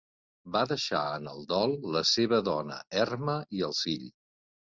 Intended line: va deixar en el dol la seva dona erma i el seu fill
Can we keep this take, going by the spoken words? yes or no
no